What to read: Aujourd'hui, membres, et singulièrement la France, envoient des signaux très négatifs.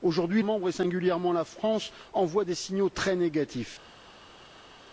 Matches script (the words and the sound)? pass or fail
pass